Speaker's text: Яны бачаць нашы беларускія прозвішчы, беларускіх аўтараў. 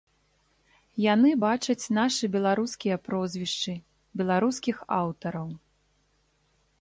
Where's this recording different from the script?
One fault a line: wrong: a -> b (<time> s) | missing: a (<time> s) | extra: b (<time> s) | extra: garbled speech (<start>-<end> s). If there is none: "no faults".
no faults